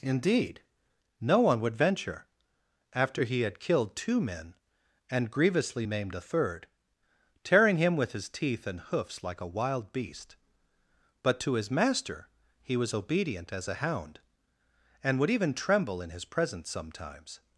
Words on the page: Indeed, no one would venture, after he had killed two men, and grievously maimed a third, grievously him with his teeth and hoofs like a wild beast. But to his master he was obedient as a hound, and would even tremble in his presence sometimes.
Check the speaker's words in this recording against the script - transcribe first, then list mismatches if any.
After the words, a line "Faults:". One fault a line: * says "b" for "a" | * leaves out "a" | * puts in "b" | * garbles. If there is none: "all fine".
Indeed, no one would venture, after he had killed two men, and grievously maimed a third, tearing him with his teeth and hoofs like a wild beast. But to his master he was obedient as a hound, and would even tremble in his presence sometimes.
Faults:
* says "tearing" for "grievously"